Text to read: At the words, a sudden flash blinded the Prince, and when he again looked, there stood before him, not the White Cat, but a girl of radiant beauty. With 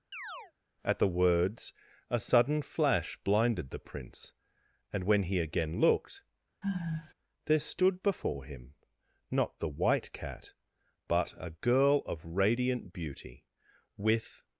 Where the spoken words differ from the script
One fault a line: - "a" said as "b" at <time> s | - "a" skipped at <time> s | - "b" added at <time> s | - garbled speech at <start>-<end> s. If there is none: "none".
none